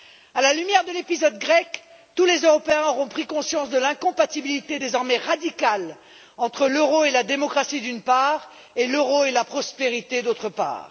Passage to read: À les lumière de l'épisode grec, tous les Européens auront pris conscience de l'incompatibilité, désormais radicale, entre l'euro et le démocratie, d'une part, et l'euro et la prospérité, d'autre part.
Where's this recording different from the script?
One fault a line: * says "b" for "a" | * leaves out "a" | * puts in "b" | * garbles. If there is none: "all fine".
* says "la" for "les"
* says "la" for "le"